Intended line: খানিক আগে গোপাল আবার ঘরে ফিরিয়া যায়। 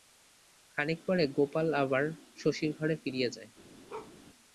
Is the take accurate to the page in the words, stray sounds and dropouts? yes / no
no